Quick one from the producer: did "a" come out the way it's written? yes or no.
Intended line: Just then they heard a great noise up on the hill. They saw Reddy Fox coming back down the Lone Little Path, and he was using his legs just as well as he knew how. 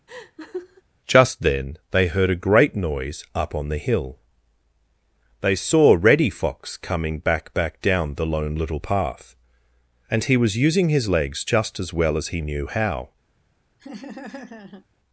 yes